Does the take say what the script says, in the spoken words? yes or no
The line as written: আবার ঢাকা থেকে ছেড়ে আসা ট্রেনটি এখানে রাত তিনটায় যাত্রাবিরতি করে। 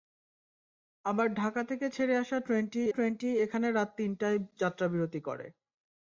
no